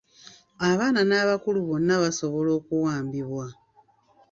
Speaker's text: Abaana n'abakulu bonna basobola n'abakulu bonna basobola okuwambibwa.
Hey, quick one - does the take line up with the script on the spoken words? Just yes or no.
no